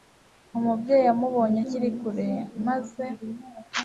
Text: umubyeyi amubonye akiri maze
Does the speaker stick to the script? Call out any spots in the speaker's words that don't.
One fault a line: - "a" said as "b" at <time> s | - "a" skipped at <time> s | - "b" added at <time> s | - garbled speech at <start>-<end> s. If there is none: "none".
- "kure" added at 2.0 s